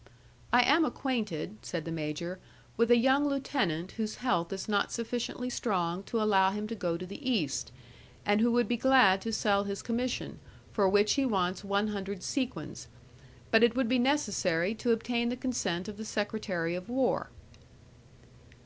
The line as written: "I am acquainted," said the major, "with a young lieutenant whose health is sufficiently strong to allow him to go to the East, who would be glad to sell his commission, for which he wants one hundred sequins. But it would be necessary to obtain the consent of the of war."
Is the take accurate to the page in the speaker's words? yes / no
no